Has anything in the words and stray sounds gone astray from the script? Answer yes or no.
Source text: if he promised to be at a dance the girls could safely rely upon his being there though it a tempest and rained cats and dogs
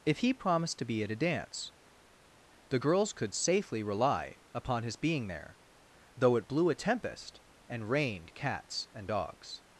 yes